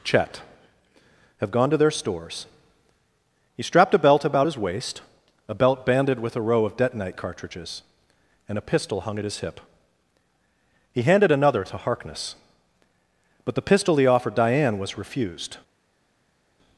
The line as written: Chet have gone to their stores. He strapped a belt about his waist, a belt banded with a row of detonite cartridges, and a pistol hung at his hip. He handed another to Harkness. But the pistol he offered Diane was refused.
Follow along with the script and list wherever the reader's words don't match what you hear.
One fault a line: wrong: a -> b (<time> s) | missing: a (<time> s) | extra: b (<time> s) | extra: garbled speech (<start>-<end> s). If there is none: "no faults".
no faults